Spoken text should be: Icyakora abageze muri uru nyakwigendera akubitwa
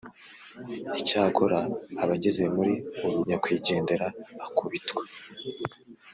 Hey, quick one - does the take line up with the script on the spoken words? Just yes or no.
yes